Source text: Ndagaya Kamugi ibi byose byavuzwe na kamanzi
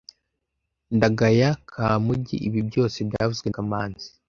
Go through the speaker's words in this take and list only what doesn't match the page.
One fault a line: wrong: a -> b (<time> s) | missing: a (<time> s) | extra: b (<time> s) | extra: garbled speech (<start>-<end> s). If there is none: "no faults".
missing: na (3.5 s)